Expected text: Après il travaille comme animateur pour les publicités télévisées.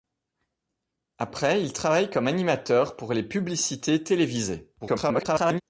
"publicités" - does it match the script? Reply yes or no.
yes